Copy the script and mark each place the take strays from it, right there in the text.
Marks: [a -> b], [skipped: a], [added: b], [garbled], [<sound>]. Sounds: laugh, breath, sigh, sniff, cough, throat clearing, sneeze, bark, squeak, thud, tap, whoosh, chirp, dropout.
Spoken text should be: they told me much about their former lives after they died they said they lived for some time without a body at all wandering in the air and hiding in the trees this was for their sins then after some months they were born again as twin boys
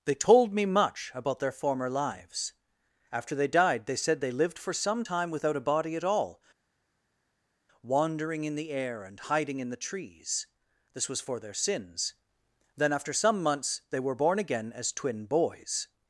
they told me much about their former lives after they died they said they lived for some time without a body at all wandering in the air and hiding in the trees this was for their sins then after some months they were born again as twin boys